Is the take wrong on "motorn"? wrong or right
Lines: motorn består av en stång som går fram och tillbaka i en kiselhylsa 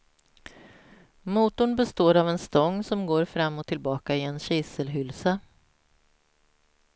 right